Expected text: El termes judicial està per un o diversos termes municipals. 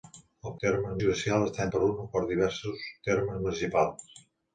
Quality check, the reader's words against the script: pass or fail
pass